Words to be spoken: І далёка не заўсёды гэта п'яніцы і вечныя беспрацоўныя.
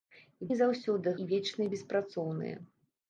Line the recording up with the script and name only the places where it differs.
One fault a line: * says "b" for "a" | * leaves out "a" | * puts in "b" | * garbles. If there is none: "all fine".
* leaves out "далёка"
* leaves out "гэта п'яніцы"